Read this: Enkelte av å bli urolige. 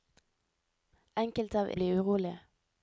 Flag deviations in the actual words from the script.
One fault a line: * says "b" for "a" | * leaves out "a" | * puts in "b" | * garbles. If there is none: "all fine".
all fine